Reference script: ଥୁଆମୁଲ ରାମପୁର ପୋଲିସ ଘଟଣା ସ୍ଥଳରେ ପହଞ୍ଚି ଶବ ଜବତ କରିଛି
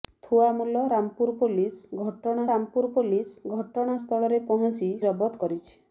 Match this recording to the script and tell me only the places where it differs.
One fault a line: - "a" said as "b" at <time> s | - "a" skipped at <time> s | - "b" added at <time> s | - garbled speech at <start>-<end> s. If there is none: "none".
- "ରାମପୁର ପୋଲିସ ଘଟଣା" added at 2.5 s
- "ଶବ" skipped at 4.9 s